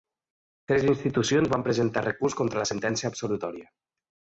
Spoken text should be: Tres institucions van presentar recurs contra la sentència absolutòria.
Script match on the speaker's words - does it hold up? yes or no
yes